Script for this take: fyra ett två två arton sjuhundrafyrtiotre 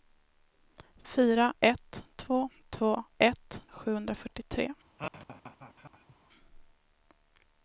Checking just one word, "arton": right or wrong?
wrong